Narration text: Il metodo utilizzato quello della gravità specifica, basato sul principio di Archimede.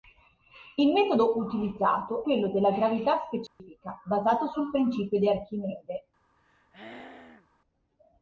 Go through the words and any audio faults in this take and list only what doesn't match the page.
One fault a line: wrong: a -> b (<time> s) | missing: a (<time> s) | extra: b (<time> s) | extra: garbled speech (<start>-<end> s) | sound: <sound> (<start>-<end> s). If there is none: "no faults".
sound: dropout (3.5-3.6 s)
sound: throat clearing (6.4-7.5 s)